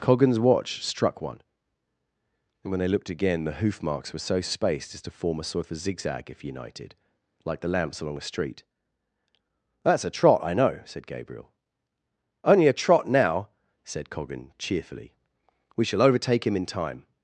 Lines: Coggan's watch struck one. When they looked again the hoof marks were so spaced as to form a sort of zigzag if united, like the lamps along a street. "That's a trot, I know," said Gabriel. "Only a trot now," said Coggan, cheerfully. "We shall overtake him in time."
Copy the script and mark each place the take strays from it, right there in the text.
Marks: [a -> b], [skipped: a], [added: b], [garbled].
Coggan's watch struck one. [added: and] When they looked again the hoof marks were so spaced as to form a sort of [added: a] zigzag if united, like the lamps along a street. "That's a trot, I know," said Gabriel. "Only a trot now," said Coggan, cheerfully. "We shall overtake him in time."